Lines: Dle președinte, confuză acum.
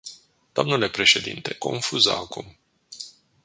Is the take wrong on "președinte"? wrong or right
right